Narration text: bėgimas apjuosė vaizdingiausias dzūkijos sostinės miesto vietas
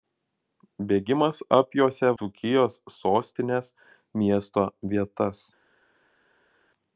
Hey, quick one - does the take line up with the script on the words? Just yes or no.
no